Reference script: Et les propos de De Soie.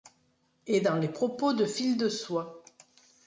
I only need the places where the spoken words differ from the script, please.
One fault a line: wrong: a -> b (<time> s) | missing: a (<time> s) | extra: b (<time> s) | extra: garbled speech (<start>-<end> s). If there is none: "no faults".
extra: dans (0.8 s)
extra: Fil (1.6 s)